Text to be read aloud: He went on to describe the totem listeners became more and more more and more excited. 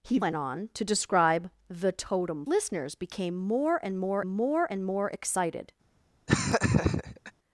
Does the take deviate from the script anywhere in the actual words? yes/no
no